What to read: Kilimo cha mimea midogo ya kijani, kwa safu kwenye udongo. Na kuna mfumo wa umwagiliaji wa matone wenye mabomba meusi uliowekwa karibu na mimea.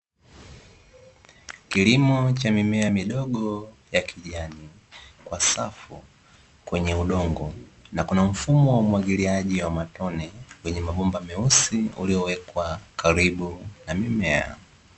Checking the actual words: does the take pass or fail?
pass